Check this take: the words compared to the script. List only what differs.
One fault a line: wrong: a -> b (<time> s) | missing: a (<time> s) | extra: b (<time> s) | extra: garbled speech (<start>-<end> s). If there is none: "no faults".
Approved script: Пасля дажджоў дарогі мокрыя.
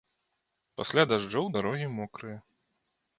no faults